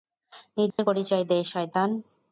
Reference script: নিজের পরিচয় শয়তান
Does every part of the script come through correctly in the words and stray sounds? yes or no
no